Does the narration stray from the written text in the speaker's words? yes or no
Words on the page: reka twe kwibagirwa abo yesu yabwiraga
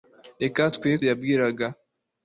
yes